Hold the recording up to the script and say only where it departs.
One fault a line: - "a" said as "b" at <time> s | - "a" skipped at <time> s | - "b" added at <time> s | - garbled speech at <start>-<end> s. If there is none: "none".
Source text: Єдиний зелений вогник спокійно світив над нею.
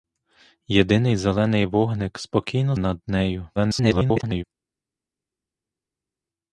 - "світив" skipped at 2.8 s
- garbled speech at 3.6-4.4 s